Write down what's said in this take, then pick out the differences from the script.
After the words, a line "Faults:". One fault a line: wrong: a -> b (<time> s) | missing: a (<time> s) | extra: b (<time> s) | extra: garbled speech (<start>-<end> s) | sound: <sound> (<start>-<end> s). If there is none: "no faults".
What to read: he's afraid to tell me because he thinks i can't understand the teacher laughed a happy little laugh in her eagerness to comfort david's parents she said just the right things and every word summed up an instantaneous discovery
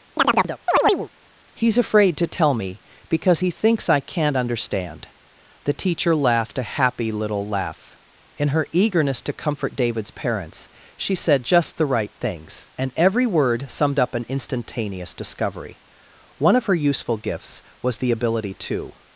he's afraid to tell me because he thinks i can't understand the teacher laughed a happy little laugh in her eagerness to comfort david's parents she said just the right things and every word summed up an instantaneous discovery one of her useful gifts was the ability to
Faults:
sound: chirp (0.2-1.1 s)
extra: one of her useful gifts was the ability to (16.4 s)